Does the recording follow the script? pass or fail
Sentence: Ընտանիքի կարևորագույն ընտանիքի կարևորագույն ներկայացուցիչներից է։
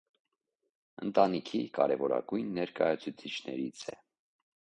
fail